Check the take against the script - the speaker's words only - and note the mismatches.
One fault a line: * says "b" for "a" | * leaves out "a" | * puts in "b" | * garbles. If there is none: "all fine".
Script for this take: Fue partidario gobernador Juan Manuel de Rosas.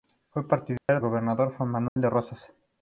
all fine